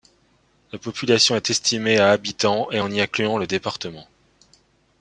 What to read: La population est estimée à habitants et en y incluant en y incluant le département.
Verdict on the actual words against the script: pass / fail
fail